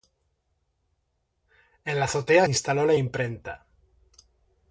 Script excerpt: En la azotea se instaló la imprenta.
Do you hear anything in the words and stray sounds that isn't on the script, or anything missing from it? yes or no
yes